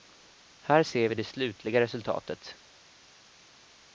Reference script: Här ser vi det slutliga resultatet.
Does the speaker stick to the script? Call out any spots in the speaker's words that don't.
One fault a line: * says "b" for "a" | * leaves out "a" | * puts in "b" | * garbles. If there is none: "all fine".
all fine